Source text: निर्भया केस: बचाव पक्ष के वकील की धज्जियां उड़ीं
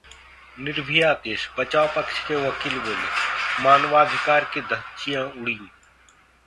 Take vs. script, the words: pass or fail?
fail